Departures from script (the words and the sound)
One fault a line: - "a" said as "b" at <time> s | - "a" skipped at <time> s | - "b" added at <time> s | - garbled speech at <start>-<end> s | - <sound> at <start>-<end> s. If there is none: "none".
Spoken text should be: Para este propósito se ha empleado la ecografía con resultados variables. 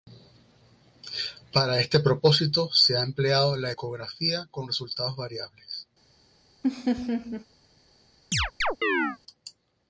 - laugh at 6.6-7.5 s
- chirp at 8.3-9.2 s